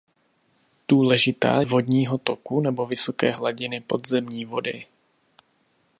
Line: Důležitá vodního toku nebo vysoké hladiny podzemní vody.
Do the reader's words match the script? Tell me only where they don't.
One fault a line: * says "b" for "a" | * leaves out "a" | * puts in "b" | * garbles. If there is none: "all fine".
all fine